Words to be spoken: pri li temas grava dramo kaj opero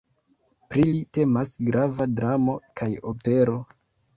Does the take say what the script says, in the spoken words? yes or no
yes